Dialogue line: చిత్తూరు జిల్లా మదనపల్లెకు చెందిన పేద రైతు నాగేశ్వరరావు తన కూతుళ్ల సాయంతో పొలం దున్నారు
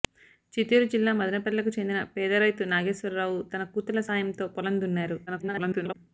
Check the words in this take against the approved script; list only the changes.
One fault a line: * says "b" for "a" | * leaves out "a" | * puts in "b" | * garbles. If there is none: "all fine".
* garbles